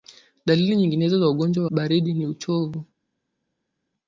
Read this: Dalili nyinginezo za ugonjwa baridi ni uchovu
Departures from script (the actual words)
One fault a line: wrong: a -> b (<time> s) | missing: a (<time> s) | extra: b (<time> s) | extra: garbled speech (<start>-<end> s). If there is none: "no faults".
no faults